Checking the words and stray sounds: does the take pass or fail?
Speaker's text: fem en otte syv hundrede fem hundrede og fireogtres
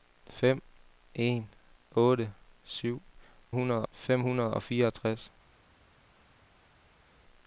pass